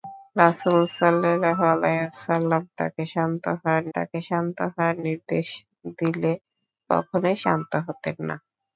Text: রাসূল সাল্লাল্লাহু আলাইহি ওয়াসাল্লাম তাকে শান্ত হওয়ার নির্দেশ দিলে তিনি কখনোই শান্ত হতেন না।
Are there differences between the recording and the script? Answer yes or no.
yes